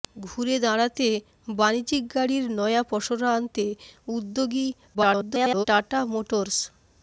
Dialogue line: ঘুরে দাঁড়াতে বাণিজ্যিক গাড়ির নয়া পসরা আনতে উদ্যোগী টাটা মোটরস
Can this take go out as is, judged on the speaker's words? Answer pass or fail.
fail